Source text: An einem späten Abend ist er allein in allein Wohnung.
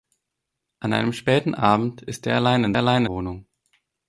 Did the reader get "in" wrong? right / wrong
right